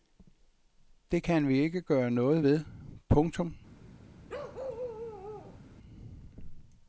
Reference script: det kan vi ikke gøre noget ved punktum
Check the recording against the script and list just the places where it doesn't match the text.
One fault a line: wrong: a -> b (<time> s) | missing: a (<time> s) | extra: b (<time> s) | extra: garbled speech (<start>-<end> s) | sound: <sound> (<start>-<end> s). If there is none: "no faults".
sound: bark (4.3-5.6 s)